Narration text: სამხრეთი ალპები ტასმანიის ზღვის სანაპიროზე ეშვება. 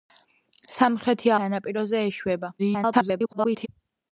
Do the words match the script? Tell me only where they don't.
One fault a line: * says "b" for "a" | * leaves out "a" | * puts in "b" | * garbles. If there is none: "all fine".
* leaves out "ალპები ტასმანიის ზღვის"
* garbles